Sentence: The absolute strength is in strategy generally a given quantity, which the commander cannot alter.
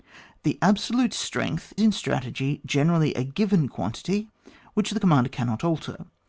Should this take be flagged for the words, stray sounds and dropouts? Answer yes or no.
yes